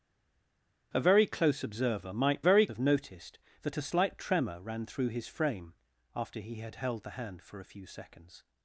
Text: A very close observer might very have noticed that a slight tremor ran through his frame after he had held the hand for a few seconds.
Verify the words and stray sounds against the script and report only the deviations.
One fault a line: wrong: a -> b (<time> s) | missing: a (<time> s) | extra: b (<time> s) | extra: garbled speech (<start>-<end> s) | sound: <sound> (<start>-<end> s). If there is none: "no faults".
no faults